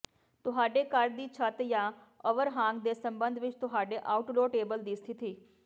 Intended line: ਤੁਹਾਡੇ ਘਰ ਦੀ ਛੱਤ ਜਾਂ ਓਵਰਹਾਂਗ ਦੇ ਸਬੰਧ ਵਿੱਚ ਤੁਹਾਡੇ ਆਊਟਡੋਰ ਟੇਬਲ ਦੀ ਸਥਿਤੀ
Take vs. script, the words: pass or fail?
pass